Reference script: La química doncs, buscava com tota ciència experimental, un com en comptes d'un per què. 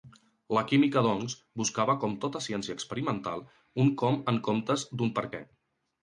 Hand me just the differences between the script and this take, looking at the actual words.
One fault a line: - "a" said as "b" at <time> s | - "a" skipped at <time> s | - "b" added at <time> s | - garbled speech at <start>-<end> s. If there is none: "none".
none